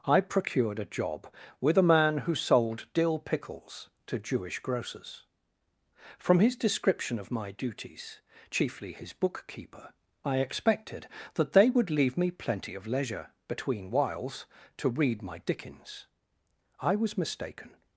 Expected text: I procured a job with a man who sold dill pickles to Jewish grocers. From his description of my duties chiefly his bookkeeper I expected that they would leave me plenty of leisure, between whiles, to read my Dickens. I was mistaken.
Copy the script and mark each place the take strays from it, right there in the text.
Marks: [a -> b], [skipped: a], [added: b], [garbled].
I procured a job with a man who sold dill pickles to Jewish grocers. From his description of my duties chiefly his bookkeeper I expected that they would leave me plenty of leisure, between whiles, to read my Dickens. I was mistaken.